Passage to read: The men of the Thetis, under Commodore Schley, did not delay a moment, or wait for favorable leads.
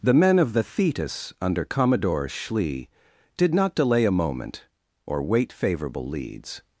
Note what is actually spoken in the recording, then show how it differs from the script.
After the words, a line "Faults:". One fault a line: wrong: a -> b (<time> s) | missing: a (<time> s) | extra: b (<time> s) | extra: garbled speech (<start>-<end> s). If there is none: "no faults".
The men of the Thetis, under Commodore Schley, did not delay a moment, or wait favorable leads.
Faults:
missing: for (5.5 s)